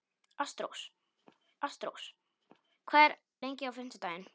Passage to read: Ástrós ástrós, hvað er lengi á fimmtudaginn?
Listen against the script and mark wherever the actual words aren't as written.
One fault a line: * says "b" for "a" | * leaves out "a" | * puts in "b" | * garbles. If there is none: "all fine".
all fine